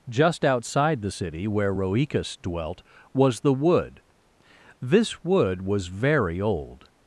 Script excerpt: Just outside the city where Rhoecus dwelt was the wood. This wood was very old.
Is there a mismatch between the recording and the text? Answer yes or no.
no